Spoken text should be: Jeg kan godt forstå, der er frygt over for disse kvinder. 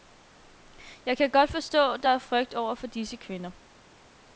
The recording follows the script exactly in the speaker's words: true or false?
true